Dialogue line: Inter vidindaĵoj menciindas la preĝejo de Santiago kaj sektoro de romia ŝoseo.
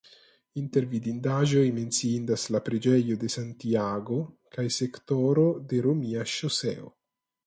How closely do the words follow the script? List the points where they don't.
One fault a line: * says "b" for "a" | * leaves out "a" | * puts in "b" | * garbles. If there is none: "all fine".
all fine